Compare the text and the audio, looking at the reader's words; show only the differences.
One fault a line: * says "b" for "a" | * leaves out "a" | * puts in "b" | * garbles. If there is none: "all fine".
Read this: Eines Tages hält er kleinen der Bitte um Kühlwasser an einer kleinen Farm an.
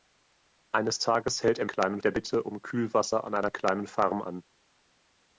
all fine